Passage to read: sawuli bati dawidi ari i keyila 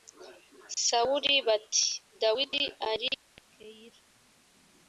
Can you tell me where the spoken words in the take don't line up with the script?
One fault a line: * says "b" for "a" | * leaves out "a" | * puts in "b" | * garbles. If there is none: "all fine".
all fine